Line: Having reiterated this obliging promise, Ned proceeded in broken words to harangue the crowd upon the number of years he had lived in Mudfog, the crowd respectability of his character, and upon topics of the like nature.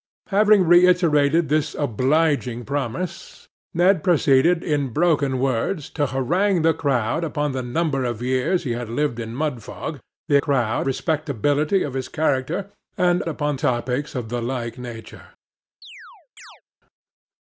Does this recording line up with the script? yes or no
yes